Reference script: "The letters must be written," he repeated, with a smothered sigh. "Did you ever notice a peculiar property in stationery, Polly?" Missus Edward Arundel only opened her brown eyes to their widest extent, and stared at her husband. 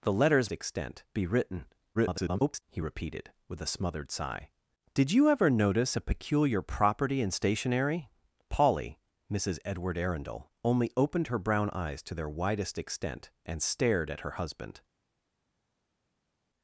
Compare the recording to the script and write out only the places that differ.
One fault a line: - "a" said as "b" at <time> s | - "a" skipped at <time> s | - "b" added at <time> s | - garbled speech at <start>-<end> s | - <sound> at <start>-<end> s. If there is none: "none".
- "must" said as "extent" at 0.5 s
- garbled speech at 1.9-2.6 s